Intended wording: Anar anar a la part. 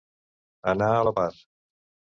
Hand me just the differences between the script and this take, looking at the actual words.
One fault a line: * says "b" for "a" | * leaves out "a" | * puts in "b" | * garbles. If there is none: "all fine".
* leaves out "anar"